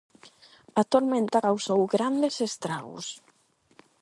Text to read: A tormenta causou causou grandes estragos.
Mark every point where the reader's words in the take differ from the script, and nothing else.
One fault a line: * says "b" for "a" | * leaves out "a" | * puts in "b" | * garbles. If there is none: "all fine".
* leaves out "causou"